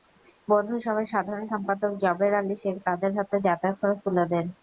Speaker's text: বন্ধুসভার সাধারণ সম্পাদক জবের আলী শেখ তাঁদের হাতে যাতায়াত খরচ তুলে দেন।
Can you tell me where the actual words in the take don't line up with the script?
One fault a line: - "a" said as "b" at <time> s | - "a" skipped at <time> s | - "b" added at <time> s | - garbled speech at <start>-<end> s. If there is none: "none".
none